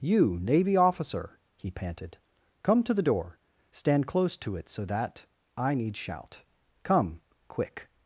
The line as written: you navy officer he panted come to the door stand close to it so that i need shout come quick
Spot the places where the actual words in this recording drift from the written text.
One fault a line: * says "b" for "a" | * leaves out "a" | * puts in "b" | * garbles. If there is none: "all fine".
all fine